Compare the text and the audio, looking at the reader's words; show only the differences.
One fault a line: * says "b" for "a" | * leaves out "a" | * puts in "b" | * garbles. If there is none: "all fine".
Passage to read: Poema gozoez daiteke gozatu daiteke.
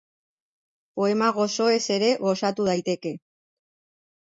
* says "ere" for "daiteke"